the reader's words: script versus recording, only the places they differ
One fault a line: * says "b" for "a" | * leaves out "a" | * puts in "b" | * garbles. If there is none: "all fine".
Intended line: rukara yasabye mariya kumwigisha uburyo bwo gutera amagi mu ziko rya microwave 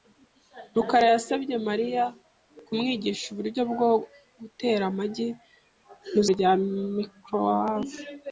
* leaves out "ziko"